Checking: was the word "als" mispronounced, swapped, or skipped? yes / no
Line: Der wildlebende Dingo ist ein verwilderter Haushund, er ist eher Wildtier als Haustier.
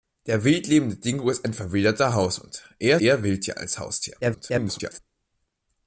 no